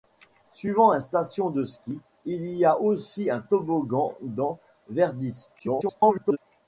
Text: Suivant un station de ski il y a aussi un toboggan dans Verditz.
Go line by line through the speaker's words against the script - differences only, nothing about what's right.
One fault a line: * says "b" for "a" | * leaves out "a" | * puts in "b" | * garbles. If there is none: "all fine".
* garbles